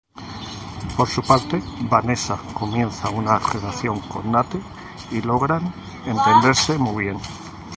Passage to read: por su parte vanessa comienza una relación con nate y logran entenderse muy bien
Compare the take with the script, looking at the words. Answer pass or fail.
pass